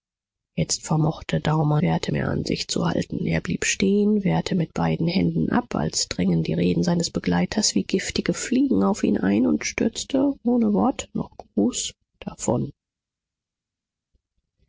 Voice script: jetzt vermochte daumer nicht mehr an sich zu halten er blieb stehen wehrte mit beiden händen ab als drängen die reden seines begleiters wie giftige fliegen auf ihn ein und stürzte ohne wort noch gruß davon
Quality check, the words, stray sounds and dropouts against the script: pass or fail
fail